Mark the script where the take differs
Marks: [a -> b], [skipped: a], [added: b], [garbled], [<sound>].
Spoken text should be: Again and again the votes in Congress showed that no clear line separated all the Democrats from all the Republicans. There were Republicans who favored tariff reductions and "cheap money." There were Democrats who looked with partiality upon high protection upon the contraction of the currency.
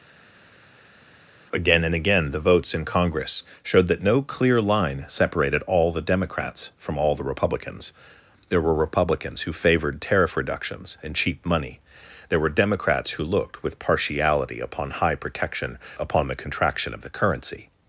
Again and again the votes in Congress showed that no clear line separated all the Democrats from all the Republicans. There were Republicans who favored tariff reductions and "cheap money." There were Democrats who looked with partiality upon high protection upon the contraction of the currency.